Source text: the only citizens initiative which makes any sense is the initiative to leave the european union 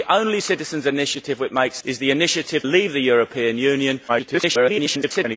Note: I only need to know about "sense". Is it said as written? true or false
false